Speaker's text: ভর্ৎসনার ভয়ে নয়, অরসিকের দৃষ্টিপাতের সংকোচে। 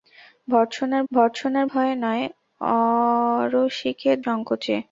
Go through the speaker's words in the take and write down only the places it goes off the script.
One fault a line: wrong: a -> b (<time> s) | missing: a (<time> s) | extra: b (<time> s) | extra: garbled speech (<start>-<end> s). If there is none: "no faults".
extra: ভর্ৎসনার (1.1 s)
missing: দৃষ্টিপাতের (4.2 s)